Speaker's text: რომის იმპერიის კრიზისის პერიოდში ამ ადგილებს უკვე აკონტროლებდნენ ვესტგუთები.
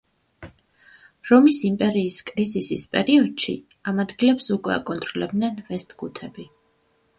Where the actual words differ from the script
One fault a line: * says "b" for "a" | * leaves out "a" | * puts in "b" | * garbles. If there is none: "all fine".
all fine